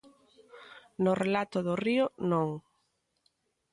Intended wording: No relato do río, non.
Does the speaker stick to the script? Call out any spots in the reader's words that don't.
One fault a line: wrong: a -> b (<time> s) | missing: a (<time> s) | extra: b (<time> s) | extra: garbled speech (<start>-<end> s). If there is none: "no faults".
no faults